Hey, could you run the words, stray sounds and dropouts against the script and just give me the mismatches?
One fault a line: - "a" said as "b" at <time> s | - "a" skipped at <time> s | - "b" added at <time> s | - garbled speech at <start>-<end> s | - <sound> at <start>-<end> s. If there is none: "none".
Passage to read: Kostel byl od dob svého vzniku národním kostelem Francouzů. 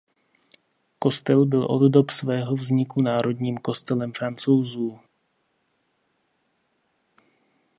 none